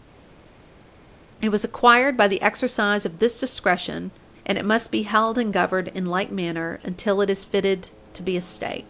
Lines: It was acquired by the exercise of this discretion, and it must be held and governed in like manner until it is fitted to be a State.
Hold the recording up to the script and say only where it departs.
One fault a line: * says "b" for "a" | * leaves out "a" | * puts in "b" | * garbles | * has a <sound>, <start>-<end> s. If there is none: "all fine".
all fine